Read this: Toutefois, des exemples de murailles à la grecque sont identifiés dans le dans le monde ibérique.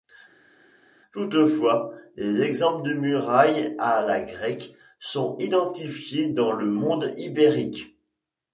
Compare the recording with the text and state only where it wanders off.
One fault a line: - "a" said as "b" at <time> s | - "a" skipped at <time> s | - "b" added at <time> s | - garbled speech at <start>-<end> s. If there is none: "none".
- "dans le" skipped at 6.7 s